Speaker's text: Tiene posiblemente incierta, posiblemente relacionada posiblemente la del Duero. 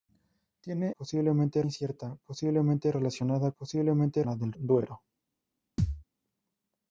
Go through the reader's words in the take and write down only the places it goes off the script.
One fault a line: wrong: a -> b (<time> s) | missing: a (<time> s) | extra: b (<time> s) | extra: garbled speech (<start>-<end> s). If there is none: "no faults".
no faults